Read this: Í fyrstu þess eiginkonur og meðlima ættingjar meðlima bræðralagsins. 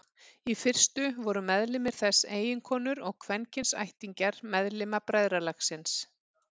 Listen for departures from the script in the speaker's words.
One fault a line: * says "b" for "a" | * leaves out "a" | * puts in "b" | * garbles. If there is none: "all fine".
* puts in "voru meðlimir"
* says "kvenkyns" for "meðlima"